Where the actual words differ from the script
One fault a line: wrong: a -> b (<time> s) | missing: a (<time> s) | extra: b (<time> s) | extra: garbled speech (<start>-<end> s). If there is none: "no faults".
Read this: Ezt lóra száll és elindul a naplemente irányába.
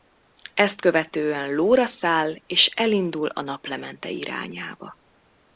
extra: követően (0.8 s)